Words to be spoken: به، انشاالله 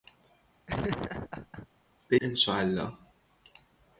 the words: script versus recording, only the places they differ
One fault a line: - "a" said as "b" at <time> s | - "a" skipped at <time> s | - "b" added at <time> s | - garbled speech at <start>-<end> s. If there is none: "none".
none